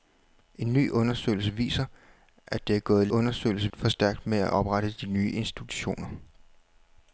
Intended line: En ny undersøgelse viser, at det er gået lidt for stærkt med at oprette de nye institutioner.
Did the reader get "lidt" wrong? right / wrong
wrong